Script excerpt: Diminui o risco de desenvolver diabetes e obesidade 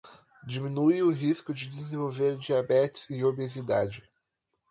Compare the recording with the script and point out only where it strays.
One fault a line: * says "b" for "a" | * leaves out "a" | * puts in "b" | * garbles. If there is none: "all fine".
all fine